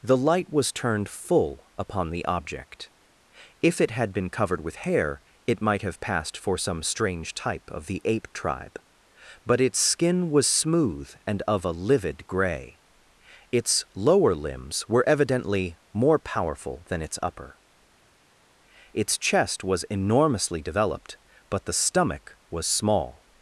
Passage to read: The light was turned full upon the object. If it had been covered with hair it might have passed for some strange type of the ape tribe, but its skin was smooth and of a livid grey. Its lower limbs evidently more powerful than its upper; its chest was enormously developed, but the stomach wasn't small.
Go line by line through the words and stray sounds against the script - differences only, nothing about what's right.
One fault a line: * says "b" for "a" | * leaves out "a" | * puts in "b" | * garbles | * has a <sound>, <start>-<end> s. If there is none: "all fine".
* puts in "were"
* says "was" for "wasn't"